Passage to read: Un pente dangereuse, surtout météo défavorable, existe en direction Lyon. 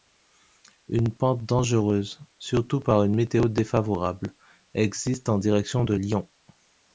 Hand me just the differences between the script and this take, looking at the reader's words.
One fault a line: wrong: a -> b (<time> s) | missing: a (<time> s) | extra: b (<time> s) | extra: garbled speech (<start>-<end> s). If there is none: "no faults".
wrong: Un -> Une (0.9 s)
extra: par une (2.8 s)
extra: de (5.8 s)